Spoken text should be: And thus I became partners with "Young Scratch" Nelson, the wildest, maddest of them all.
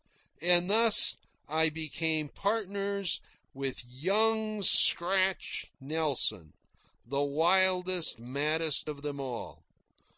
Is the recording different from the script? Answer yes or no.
no